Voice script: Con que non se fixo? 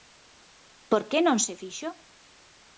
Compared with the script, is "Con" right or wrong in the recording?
wrong